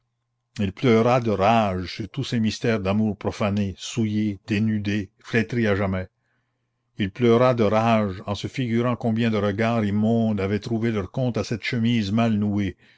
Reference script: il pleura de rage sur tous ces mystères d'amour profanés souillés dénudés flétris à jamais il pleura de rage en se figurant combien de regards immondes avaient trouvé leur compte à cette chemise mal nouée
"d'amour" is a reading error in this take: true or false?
false